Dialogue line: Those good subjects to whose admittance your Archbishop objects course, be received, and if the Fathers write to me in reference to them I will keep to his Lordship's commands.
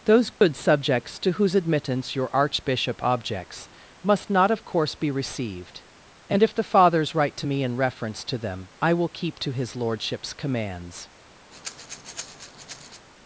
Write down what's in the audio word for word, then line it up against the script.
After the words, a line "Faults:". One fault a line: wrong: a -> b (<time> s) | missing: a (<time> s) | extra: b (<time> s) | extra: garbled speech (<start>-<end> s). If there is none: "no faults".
Those good subjects to whose admittance your Archbishop objects must not, of course, be received, and if the Fathers write to me in reference to them I will keep to his Lordship's commands.
Faults:
extra: must not of (4.0 s)